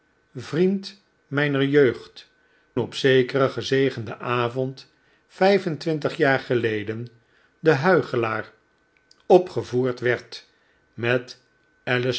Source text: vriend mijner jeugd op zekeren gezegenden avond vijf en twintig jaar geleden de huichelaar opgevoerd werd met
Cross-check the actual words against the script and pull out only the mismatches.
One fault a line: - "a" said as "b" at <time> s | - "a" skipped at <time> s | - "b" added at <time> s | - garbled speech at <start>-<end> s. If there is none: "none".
none